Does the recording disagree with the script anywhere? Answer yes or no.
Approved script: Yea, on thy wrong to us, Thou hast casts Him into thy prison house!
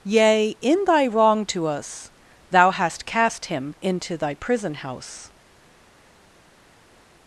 yes